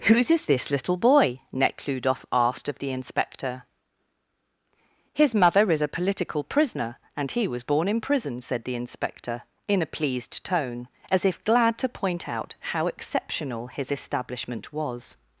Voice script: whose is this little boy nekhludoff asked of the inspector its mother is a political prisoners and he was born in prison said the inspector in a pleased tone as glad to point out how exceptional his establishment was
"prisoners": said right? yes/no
no